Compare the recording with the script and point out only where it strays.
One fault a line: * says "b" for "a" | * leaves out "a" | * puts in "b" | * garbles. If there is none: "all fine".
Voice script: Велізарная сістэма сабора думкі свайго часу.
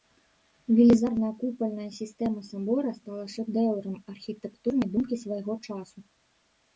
* puts in "купальная"
* puts in "стала шэдэўрам архітэктурнай"